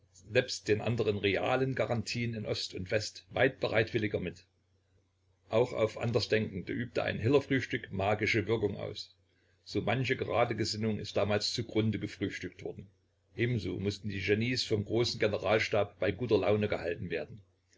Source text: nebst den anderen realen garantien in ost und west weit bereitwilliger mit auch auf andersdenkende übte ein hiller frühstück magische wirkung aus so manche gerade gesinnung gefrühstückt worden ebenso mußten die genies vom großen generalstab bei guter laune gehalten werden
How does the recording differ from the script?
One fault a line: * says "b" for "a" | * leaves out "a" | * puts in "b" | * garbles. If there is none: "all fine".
* puts in "ist damals zugrunde"